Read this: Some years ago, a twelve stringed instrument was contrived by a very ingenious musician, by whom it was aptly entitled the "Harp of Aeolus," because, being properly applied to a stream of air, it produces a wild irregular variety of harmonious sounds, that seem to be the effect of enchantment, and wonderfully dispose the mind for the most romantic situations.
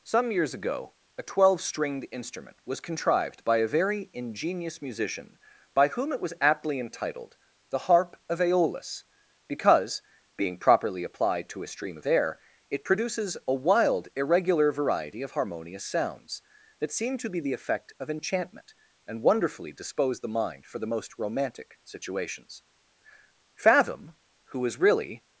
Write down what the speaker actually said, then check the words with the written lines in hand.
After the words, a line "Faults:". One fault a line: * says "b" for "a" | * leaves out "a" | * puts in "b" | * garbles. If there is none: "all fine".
Some years ago, a twelve stringed instrument was contrived by a very ingenious musician, by whom it was aptly entitled the "Harp of Aeolus," because, being properly applied to a stream of air, it produces a wild irregular variety of harmonious sounds, that seem to be the effect of enchantment, and wonderfully dispose the mind for the most romantic situations. Fathom, who was really
Faults:
* puts in "Fathom who was really"